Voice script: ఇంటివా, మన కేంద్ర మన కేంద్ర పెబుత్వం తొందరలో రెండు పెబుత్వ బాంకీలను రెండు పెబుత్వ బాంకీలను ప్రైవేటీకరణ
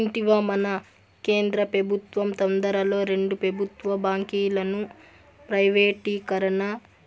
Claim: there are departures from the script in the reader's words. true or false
true